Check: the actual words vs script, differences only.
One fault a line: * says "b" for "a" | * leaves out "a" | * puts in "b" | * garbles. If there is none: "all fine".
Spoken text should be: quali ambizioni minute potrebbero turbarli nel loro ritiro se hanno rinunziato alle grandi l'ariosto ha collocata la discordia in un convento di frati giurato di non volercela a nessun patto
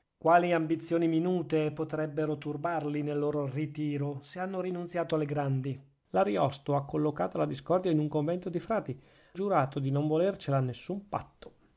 all fine